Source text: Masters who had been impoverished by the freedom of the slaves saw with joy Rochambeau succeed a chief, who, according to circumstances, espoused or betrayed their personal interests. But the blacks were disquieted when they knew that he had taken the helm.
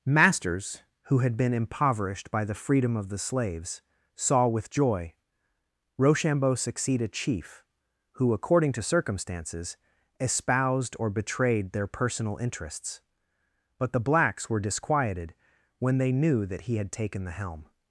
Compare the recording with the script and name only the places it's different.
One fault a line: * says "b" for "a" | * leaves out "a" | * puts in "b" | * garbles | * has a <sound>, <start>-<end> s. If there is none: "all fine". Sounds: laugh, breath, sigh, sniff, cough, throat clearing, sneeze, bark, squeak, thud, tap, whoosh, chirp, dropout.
all fine